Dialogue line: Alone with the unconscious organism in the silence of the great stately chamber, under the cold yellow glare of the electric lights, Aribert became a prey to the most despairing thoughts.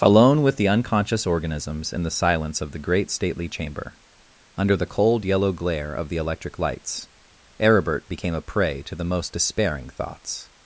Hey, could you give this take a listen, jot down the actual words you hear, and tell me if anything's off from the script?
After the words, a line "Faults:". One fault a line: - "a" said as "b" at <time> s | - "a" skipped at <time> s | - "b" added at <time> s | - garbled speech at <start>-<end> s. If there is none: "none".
Alone with the unconscious organisms in the silence of the great stately chamber, under the cold yellow glare of the electric lights, Aribert became a prey to the most despairing thoughts.
Faults:
- "organism" said as "organisms" at 1.3 s